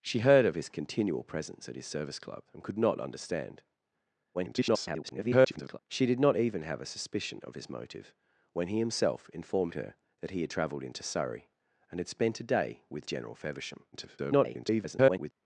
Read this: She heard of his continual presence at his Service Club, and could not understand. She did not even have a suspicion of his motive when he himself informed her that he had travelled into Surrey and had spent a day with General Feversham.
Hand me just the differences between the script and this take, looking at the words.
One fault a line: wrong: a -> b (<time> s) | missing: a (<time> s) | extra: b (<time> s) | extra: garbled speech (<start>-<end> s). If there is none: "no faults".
extra: garbled speech (4.3-5.8 s)
extra: garbled speech (13.9-15.3 s)